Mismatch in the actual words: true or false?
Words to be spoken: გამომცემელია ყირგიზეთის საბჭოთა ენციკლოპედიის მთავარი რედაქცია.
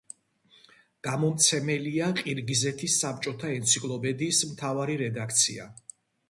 false